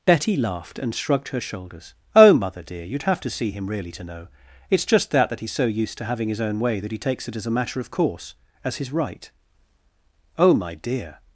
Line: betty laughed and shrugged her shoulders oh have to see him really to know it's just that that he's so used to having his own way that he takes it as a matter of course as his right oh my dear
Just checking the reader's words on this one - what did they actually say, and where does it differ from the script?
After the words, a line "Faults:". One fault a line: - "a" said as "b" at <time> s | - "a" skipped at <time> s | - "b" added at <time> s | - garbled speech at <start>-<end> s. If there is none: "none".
betty laughed and shrugged her shoulders oh mother dear you'd have to see him really to know it's just that that he's so used to having his own way that he takes it as a matter of course as his right oh my dear
Faults:
- "mother dear you'd" added at 2.3 s